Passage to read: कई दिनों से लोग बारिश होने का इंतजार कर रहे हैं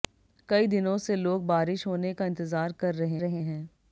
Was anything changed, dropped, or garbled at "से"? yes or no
no